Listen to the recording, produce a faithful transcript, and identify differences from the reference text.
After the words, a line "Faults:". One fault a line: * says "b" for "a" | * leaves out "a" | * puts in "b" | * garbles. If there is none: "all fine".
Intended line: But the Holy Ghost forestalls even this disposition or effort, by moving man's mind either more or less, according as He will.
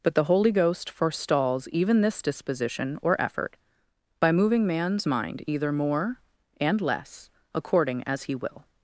But the Holy Ghost forestalls even this disposition or effort, by moving man's mind either more and less, according as He will.
Faults:
* says "and" for "or"